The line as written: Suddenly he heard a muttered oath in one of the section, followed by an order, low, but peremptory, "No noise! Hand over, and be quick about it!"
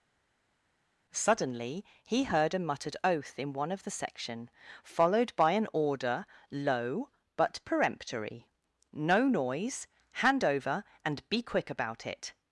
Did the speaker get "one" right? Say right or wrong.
right